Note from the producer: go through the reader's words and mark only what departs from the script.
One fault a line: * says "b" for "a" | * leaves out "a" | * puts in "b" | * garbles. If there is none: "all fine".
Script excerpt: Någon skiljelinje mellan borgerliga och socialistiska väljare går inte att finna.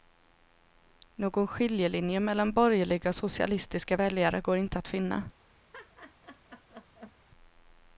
all fine